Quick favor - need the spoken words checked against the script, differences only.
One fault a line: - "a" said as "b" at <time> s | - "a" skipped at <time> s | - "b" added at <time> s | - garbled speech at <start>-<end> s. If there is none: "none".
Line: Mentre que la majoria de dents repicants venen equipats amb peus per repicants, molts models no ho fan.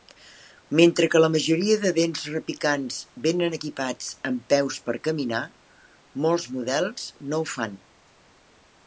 - "repicants" said as "caminar" at 5.1 s